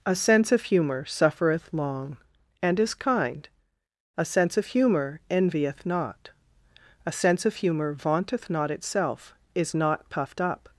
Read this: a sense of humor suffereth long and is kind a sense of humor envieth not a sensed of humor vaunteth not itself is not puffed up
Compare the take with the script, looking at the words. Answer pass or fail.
fail